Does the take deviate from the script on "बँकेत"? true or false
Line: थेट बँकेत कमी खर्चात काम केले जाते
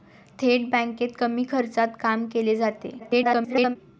false